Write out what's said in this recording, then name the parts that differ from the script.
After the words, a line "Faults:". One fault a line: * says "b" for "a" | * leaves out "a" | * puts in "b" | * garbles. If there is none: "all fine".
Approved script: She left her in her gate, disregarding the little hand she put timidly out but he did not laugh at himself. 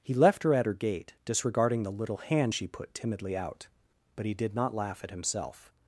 He left her at her gate, disregarding the little hand she put timidly out but he did not laugh at himself.
Faults:
* says "He" for "She"
* says "at" for "in"